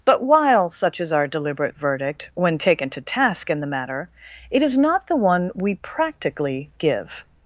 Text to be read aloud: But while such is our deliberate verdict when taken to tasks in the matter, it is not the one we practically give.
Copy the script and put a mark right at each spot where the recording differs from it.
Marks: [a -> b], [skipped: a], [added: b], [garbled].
But while such is our deliberate verdict when taken to [tasks -> task] in the matter, it is not the one we practically give.